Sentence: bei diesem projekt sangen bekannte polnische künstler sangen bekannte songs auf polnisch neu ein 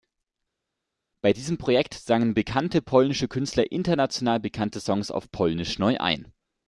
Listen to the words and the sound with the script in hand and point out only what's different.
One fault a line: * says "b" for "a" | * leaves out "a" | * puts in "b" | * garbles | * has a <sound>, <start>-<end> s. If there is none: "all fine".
* says "international" for "sangen"